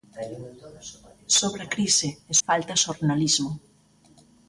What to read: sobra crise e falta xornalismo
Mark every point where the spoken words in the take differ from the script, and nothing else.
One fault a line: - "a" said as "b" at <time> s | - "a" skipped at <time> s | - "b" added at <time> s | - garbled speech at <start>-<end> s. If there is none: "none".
none